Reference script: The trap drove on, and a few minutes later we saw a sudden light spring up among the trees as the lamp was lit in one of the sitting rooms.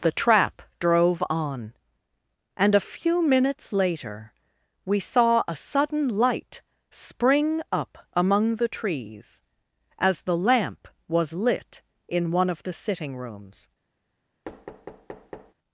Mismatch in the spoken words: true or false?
false